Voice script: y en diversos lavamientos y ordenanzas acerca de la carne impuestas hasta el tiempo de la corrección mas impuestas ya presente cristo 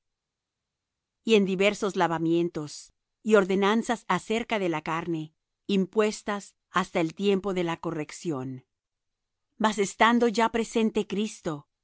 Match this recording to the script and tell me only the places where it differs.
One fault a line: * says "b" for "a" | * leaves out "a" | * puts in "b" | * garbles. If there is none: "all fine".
* says "estando" for "impuestas"